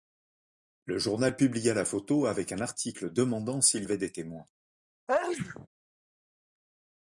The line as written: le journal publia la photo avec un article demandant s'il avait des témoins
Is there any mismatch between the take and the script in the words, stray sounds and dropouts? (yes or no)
yes